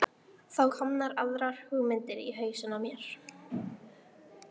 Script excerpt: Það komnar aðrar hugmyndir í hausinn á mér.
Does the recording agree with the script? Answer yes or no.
yes